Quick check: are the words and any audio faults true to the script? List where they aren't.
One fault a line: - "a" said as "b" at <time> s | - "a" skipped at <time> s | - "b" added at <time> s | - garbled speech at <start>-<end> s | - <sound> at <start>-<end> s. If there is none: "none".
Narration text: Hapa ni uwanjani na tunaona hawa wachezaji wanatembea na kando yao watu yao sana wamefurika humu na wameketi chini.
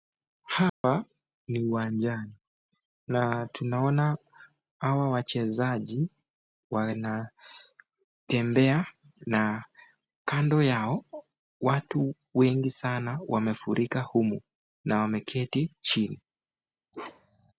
- dropout at 0.7-0.8 s
- "yao" said as "wengi" at 12.3 s
- bark at 16.9-17.5 s